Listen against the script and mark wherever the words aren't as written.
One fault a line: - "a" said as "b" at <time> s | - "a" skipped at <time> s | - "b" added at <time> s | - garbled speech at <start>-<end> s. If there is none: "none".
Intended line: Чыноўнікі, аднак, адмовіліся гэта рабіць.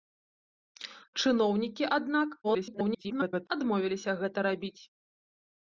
- garbled speech at 2.4-3.5 s